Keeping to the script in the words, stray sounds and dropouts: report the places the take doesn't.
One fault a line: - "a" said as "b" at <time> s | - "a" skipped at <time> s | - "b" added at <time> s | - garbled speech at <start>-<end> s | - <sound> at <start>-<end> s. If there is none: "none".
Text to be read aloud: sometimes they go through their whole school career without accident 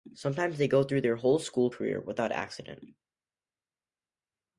none